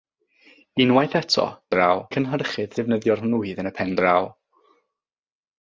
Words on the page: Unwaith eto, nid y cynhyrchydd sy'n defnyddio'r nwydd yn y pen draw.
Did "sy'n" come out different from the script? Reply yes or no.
yes